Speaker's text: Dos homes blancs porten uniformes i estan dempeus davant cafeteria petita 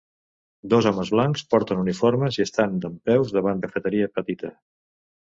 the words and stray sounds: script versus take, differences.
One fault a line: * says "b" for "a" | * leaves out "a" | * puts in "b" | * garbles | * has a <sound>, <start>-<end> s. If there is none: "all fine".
all fine